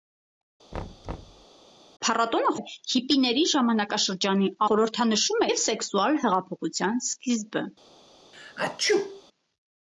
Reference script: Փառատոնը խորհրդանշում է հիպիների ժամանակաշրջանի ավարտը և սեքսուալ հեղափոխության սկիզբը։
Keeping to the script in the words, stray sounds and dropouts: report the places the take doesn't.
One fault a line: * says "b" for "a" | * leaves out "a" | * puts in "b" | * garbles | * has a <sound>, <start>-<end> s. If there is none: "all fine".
* has a thud, 0.7-1.5 s
* leaves out "խորհրդանշում"
* says "խորհրդանշում" for "ավարտը"
* has a sneeze, 8.3-9.2 s